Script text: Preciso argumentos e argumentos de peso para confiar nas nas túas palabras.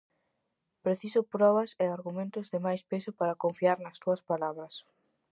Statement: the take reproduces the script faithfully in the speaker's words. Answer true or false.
false